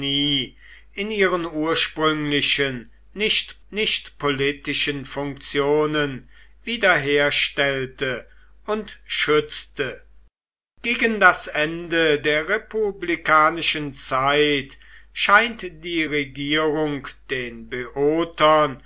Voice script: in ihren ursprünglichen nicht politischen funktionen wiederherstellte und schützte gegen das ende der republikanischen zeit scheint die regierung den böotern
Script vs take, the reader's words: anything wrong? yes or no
yes